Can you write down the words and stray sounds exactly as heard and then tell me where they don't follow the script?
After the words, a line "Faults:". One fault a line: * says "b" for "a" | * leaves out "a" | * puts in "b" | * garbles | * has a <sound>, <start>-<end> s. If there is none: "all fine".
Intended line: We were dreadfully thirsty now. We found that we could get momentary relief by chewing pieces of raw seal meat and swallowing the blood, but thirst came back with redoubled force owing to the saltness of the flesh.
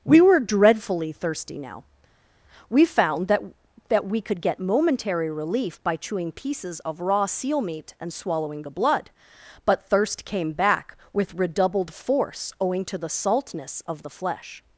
We were dreadfully thirsty now. We found that that we could get momentary relief by chewing pieces of raw seal meat and swallowing the blood, but thirst came back with redoubled force owing to the saltness of the flesh.
Faults:
* puts in "that"